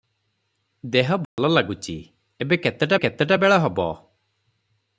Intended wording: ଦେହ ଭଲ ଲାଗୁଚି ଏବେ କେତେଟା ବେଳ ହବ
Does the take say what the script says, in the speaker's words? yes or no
no